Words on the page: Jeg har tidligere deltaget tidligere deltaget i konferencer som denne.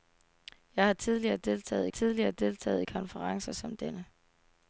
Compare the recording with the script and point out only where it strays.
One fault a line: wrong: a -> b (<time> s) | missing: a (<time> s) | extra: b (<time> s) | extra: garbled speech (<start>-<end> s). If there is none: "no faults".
no faults